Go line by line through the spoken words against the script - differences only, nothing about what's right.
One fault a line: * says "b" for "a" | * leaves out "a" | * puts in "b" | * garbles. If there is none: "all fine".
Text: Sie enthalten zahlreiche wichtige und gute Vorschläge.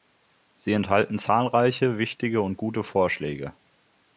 all fine